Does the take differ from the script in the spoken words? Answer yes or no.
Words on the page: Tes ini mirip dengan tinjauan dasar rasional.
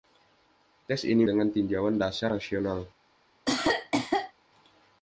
yes